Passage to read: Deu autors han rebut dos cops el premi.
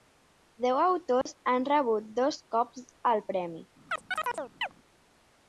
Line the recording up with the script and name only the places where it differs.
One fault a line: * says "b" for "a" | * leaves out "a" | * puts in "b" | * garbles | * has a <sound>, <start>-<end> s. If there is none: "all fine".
* has a dropout, 1.2-1.3 s
* has a chirp, 3.9-4.7 s